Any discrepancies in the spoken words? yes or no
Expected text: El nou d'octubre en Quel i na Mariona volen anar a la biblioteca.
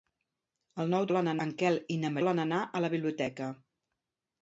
yes